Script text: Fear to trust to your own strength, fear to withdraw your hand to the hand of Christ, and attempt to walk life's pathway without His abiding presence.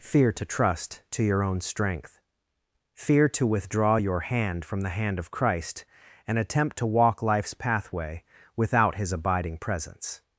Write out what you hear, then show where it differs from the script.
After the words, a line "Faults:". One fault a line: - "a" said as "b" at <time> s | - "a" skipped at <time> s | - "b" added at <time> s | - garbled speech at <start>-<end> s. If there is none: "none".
Fear to trust to your own strength, fear to withdraw your hand from the hand of Christ, and attempt to walk life's pathway without His abiding presence.
Faults:
- "to" said as "from" at 4.6 s